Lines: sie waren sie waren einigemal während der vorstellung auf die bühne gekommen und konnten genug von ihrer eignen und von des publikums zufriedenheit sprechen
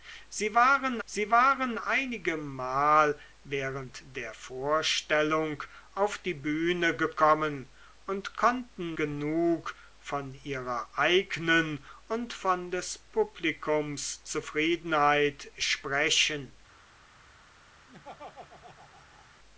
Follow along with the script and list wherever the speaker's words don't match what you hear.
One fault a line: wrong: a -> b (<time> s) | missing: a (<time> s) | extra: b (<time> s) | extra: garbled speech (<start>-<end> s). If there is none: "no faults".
no faults